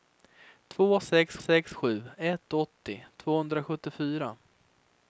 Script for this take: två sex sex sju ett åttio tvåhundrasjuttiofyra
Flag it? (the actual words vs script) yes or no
no